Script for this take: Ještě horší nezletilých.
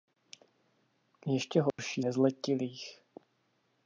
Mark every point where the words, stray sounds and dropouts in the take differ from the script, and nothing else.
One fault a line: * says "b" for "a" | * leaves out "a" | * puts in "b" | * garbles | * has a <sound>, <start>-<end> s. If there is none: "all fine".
* has a dropout, 1.7-1.8 s